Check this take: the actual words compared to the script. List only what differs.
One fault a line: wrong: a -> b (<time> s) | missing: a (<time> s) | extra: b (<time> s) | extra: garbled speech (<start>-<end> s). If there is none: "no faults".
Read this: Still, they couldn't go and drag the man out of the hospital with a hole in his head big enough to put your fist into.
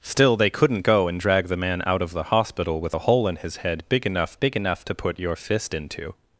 extra: big enough (4.4 s)